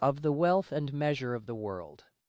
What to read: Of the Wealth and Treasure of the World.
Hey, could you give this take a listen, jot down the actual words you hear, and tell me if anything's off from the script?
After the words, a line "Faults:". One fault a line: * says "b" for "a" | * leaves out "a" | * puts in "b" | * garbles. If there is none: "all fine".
Of the Wealth and Measure of the World.
Faults:
* says "Measure" for "Treasure"